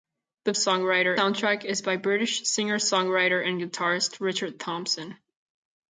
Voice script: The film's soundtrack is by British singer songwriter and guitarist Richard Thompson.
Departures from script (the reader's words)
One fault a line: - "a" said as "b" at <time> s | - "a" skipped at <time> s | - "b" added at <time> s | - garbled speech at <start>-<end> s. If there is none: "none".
- "film's" said as "songwriter" at 0.5 s